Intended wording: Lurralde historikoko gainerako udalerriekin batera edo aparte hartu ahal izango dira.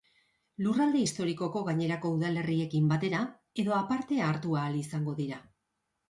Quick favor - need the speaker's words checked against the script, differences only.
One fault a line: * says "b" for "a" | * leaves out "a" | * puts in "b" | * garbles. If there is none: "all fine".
all fine